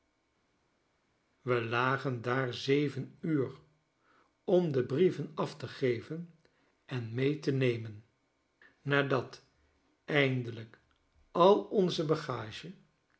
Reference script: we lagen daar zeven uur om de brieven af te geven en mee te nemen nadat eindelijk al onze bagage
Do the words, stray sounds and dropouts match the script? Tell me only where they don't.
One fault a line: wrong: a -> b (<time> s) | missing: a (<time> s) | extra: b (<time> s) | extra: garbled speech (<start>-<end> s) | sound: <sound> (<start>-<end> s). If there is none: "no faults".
no faults